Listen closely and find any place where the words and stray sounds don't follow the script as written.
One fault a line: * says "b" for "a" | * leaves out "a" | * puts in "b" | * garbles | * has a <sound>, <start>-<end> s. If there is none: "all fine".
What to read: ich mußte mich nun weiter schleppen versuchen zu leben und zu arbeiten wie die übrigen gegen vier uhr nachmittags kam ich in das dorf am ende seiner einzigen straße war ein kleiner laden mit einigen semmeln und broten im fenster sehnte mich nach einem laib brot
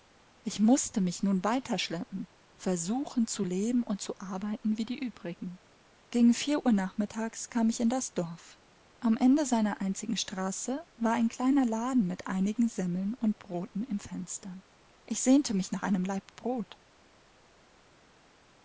* puts in "ich"